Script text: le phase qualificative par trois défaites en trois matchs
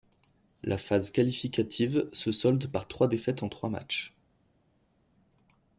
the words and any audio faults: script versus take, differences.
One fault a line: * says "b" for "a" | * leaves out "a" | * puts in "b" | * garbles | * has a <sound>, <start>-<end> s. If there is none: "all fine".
* says "la" for "le"
* puts in "se solde"